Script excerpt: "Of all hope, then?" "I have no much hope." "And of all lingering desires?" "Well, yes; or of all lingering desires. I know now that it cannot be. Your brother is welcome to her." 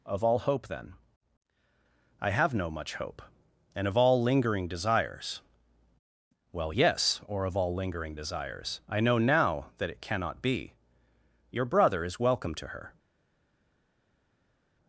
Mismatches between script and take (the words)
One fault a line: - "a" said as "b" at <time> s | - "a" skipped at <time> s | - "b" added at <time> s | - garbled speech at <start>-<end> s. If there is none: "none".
none